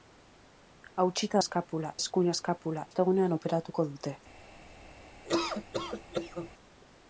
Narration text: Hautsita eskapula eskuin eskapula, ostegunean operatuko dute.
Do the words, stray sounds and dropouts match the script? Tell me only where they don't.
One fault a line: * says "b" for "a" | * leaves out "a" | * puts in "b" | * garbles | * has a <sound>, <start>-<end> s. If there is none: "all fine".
* has a laugh, 5.2-6.5 s